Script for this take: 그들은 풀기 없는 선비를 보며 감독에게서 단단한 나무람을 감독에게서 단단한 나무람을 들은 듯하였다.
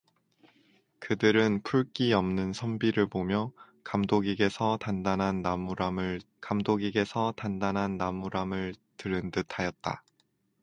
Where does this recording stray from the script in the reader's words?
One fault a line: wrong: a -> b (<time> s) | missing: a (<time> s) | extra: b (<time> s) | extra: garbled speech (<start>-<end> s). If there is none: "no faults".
no faults